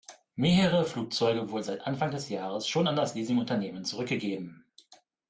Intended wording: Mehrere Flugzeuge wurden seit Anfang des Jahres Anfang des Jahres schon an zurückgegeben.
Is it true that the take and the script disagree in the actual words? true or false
true